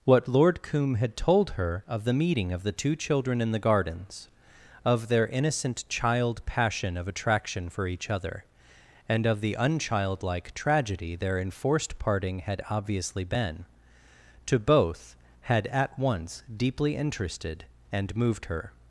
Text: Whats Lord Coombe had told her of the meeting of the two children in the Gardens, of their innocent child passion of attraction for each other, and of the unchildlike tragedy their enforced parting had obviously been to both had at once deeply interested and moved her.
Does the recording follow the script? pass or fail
fail